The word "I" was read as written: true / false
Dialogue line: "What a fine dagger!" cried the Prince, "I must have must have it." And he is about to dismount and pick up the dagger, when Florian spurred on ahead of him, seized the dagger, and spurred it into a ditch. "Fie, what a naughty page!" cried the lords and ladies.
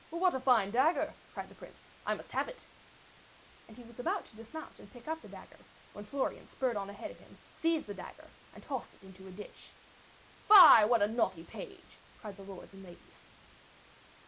true